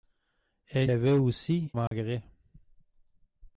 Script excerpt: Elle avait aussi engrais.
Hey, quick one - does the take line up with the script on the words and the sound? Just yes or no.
no